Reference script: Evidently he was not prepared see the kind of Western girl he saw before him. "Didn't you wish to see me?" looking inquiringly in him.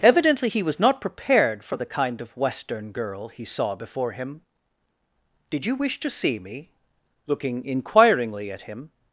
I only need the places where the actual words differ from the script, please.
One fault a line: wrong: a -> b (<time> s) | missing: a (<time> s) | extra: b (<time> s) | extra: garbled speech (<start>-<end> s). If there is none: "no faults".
wrong: see -> for (1.6 s)
wrong: Didn't -> Did (5.5 s)
wrong: in -> at (8.5 s)